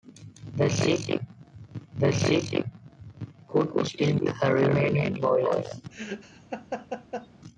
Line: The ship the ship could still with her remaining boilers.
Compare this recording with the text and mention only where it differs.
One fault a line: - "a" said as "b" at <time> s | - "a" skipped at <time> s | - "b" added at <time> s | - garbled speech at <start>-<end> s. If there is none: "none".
none